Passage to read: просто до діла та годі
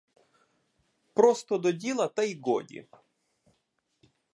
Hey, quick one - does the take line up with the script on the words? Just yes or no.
no